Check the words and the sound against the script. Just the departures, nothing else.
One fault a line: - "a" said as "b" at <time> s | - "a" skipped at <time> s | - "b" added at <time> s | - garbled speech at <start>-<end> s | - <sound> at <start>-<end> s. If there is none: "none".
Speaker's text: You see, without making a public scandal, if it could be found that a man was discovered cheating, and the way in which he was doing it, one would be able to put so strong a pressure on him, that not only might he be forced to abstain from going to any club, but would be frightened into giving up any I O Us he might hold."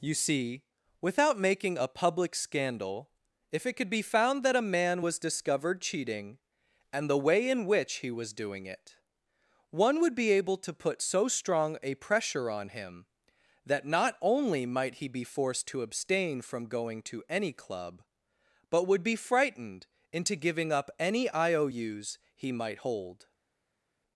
none